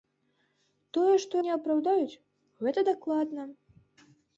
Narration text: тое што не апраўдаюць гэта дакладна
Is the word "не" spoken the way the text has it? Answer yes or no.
yes